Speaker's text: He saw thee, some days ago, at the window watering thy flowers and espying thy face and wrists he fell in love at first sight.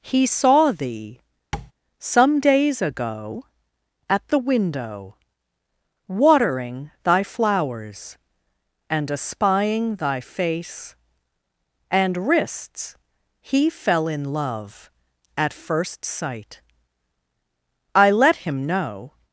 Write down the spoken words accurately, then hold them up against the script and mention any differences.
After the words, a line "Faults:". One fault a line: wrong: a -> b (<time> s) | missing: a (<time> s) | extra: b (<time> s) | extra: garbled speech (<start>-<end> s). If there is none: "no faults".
He saw thee, some days ago, at the window watering thy flowers and espying thy face and wrists he fell in love at first sight. I let him know
Faults:
extra: I let him know (17.9 s)